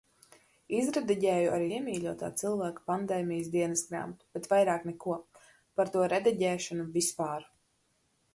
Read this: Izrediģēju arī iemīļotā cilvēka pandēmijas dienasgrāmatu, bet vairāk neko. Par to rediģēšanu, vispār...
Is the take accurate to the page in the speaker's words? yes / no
yes